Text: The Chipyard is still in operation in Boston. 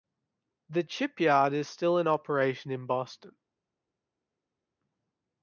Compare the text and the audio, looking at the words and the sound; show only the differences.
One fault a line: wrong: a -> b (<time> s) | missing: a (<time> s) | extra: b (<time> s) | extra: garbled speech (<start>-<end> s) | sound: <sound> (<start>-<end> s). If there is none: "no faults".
no faults